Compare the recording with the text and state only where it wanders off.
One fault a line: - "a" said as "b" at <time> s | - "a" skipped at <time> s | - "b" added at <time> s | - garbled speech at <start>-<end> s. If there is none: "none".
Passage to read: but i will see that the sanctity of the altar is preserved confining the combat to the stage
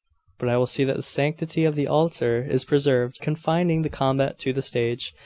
none